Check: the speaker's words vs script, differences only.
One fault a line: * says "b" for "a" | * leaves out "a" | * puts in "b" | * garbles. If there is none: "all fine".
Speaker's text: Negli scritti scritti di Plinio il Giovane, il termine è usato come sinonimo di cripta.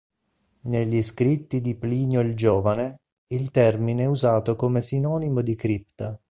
* leaves out "scritti"